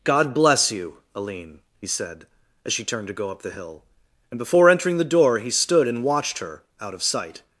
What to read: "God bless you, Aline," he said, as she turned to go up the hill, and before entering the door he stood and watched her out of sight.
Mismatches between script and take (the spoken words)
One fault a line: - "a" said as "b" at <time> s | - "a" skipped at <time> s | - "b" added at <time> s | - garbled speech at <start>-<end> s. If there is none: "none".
none